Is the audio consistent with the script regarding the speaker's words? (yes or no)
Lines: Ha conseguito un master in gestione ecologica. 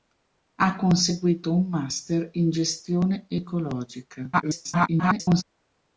no